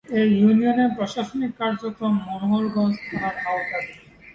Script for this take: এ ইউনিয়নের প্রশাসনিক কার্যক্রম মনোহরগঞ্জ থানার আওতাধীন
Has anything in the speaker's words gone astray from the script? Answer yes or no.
no